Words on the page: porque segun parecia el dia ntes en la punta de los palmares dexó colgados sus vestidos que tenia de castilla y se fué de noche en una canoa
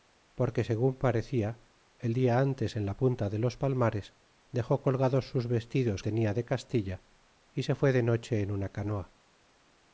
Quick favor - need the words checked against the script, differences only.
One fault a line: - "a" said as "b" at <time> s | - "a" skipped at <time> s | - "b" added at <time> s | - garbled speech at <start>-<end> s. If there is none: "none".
- "que" skipped at 6.0 s